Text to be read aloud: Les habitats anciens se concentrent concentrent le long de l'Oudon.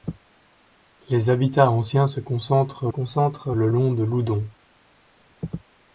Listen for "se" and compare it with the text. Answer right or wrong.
right